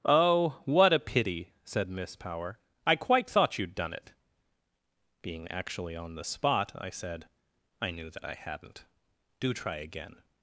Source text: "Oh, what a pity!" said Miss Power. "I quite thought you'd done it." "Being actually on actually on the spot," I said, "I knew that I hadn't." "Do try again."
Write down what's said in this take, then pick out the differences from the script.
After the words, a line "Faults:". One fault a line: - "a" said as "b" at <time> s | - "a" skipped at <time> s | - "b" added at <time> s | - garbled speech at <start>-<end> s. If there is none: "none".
"Oh, what a pity!" said Miss Power. "I quite thought you'd done it." "Being actually on the spot," I said, "I knew that I hadn't." "Do try again."
Faults:
- "actually on" skipped at 6.2 s